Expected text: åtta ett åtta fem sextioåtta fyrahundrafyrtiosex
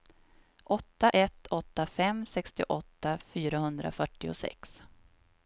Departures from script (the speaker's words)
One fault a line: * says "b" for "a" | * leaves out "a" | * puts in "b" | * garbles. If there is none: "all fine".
all fine